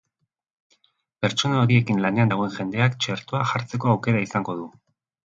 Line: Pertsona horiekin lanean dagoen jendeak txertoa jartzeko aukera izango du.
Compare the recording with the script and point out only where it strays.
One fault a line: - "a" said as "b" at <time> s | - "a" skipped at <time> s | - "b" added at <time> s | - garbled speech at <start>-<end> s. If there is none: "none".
none